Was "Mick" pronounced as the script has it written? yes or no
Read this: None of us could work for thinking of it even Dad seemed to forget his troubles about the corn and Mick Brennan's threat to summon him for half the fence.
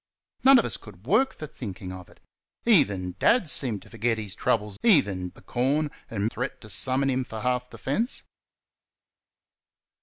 no